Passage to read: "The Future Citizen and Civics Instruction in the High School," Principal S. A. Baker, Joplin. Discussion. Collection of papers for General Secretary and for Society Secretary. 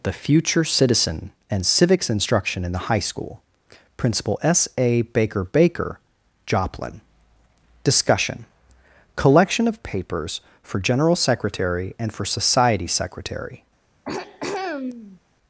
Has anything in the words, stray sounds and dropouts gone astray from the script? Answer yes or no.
yes